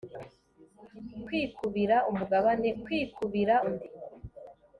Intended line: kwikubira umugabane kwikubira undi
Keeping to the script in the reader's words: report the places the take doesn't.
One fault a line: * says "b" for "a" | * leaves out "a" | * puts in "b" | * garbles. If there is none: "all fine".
all fine